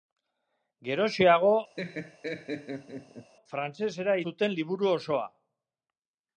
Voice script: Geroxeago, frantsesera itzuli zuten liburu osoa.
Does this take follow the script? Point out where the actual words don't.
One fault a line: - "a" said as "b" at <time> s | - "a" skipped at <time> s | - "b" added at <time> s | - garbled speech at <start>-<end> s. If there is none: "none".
- "itzuli" skipped at 4.2 s